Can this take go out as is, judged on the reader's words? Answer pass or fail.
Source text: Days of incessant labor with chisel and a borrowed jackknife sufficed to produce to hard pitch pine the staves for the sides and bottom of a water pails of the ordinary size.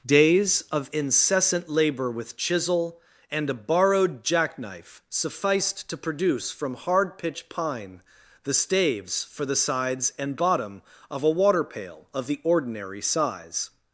fail